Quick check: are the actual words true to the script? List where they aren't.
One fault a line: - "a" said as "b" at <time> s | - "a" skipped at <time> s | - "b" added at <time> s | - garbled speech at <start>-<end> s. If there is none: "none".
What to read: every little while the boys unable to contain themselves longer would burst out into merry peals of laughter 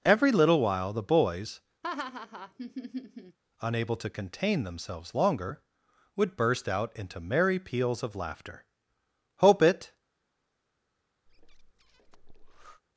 - "hope it" added at 9.4 s